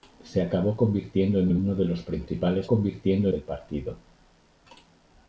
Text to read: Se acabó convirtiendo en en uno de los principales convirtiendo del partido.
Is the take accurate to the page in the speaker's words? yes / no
yes